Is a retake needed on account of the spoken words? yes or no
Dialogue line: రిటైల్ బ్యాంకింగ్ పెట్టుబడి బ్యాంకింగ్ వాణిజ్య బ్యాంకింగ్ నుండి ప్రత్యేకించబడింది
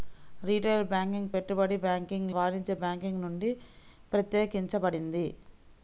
no